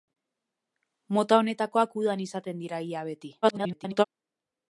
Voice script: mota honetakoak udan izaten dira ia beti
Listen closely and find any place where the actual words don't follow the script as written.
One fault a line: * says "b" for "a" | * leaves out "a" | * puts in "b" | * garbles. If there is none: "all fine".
* garbles